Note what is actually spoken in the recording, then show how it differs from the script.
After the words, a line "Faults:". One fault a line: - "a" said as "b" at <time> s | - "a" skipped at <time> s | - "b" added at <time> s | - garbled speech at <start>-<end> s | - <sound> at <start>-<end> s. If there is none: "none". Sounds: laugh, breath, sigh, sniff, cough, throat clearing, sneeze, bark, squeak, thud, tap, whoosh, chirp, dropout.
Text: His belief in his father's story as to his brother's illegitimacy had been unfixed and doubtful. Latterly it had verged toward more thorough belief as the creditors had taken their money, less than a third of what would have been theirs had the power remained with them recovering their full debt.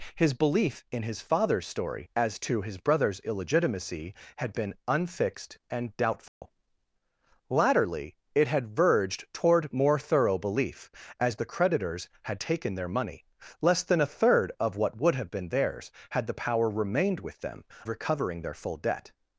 His belief in his father's story as to his brother's illegitimacy had been unfixed and doubtful. Latterly it had verged toward more thorough belief as the creditors had taken their money, less than a third of what would have been theirs had the power remained with them recovering their full debt.
Faults:
- dropout at 6.3-6.4 s